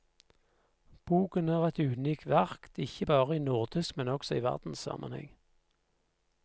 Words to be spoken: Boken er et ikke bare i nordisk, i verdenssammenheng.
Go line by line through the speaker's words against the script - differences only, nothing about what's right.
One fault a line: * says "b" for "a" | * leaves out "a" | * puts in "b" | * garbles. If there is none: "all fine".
* puts in "unikt verk"
* puts in "men også"